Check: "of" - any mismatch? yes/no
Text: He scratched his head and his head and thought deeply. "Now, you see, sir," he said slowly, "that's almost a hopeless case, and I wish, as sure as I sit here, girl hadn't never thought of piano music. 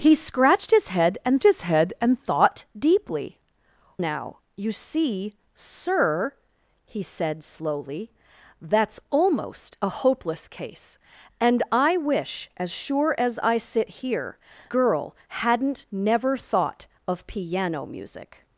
no